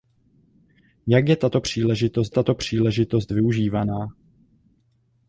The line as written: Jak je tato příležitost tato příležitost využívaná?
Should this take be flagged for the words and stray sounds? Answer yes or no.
no